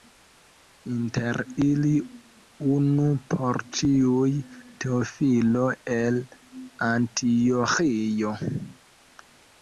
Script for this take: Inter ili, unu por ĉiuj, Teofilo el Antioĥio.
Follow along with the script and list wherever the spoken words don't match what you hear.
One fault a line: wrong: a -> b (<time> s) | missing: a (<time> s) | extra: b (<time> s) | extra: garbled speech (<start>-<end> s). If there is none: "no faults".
no faults